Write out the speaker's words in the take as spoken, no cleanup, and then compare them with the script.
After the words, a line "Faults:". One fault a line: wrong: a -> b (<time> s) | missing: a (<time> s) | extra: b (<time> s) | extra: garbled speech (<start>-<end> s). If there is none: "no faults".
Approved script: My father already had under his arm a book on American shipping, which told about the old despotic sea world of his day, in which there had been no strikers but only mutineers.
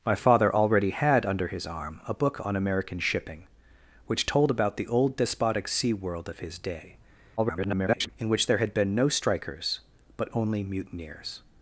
My father already had under his arm a book on American shipping, which told about the old despotic sea world of his day, [garbled] in which there had been no strikers but only mutineers.
Faults:
extra: garbled speech (7.4-8.1 s)